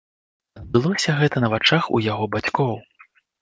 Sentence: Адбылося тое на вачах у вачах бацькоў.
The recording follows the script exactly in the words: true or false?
false